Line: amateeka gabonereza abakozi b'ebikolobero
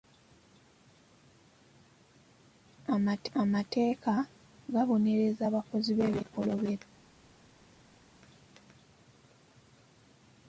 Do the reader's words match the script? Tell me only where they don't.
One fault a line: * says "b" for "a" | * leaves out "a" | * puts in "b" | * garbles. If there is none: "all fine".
all fine